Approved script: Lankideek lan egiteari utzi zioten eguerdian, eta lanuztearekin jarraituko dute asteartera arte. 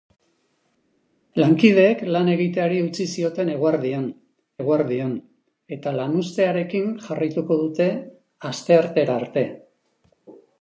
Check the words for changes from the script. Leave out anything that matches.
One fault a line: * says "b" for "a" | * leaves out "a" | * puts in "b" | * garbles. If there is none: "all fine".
* puts in "eguerdian"